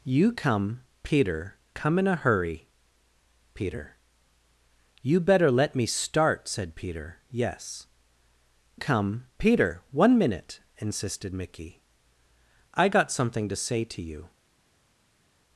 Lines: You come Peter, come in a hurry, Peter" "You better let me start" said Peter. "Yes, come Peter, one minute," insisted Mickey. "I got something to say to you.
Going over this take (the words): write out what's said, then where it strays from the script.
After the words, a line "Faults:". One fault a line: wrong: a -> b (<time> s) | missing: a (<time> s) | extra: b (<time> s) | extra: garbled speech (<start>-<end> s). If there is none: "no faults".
You come Peter, come in a hurry, Peter" "You better let me start" said Peter. "Yes, come Peter, one minute," insisted Mickey. "I got something to say to you.
Faults:
no faults